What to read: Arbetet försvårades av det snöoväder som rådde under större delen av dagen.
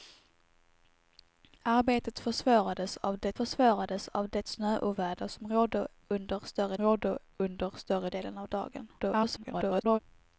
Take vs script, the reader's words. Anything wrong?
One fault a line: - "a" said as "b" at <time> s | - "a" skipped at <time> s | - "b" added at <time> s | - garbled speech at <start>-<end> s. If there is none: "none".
- "försvårades av det" added at 3.3 s
- "rådde under större" added at 6.8 s
- garbled speech at 9.0-10.0 s